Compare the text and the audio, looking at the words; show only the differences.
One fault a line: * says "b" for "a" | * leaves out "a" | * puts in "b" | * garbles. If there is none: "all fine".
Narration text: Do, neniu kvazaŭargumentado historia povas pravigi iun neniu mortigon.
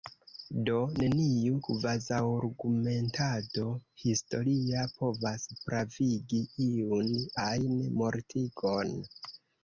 * says "ajn" for "neniu"